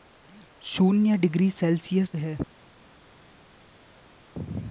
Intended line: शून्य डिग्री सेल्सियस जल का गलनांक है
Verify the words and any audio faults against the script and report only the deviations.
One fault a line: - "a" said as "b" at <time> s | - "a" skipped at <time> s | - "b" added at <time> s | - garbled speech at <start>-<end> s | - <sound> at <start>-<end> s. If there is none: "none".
- "जल का गलनांक" skipped at 2.1 s